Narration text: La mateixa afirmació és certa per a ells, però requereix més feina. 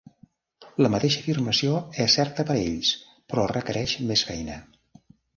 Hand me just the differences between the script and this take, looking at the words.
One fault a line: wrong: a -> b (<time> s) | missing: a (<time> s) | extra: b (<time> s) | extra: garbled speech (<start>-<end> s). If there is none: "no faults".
no faults